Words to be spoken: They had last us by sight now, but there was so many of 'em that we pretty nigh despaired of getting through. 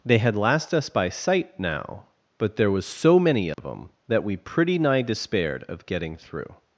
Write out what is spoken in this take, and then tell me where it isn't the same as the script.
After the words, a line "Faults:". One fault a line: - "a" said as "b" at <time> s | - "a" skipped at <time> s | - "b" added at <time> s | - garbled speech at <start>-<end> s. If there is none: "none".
They had last us by sight now, but there was so many of 'em that we pretty nigh despaired of getting through.
Faults:
none